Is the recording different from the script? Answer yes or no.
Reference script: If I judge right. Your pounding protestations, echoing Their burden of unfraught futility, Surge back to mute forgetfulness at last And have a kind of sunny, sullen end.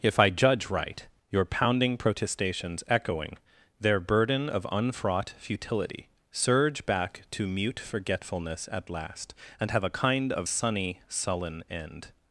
no